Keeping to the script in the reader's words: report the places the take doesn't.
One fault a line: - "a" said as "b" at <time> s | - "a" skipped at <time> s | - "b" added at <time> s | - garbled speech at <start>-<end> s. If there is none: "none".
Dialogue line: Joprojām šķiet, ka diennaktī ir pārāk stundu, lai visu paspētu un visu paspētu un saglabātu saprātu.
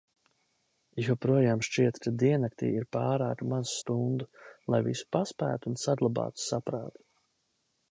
- "maz" added at 3.5 s
- "visu paspētu un" skipped at 5.8 s